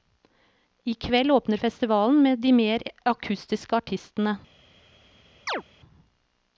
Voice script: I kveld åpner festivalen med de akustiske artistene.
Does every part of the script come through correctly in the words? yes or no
no